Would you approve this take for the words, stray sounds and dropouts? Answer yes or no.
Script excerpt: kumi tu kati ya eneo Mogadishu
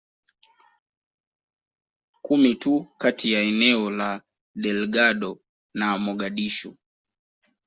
no